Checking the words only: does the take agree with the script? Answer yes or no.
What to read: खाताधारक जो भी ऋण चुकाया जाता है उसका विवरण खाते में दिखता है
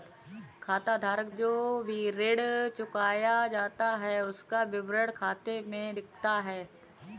yes